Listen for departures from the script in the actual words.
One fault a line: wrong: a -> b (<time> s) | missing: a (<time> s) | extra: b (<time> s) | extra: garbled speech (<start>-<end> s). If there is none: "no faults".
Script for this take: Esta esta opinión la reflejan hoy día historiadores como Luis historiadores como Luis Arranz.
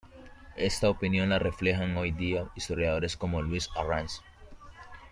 missing: esta (0.9 s)
missing: historiadores como Luis (3.7 s)